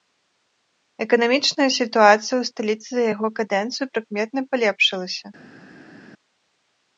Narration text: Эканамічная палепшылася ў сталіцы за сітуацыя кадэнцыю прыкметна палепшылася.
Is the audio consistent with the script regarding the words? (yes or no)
no